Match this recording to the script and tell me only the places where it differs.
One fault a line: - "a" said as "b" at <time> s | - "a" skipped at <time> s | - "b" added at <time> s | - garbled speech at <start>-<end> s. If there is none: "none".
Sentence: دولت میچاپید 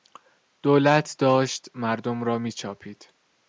- "داشت مردم را" added at 1.2 s